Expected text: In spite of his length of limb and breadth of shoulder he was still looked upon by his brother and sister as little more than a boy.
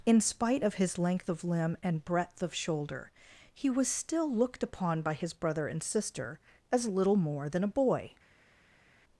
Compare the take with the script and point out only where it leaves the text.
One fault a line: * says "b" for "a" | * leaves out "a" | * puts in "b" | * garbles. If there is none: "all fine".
all fine